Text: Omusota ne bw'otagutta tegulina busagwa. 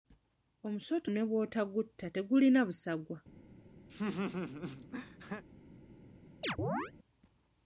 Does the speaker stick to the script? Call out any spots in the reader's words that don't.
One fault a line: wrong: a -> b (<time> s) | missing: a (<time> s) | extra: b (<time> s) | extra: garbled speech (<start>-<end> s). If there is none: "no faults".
no faults